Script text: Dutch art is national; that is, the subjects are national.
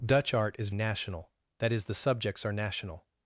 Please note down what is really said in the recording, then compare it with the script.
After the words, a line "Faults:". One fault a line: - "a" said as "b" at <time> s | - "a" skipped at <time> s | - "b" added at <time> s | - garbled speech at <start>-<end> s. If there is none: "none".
Dutch art is national; that is, the subjects are national.
Faults:
none